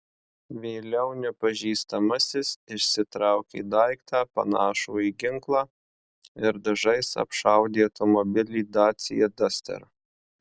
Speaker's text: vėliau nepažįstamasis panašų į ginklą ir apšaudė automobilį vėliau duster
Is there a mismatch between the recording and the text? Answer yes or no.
yes